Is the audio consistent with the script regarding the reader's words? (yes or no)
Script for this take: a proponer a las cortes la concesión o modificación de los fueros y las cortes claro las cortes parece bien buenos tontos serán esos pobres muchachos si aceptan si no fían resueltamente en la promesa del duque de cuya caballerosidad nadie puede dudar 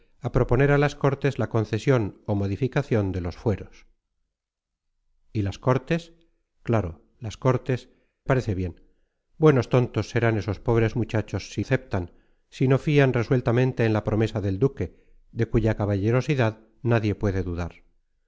yes